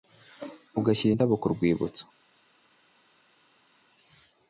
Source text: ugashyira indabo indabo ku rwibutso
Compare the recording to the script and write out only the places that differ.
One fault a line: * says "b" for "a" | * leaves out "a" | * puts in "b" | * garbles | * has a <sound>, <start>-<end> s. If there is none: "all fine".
* leaves out "indabo"